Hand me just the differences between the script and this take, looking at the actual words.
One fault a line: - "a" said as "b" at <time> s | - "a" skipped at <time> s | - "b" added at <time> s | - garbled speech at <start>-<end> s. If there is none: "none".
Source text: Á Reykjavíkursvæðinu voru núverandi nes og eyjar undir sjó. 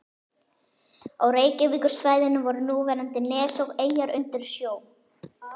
none